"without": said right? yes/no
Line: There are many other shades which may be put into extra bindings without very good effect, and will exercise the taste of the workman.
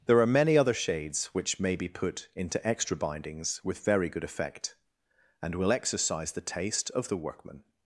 no